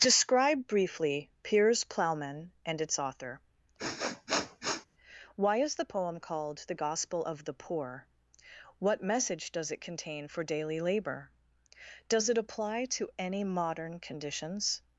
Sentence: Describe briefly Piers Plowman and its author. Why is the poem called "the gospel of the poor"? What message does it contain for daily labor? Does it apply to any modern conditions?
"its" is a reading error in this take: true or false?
false